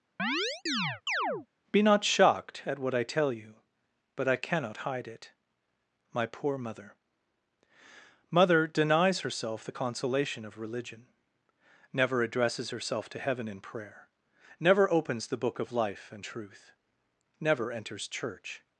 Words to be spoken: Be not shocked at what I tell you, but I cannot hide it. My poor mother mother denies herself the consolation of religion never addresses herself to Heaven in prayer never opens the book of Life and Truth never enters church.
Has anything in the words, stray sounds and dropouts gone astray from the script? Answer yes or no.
yes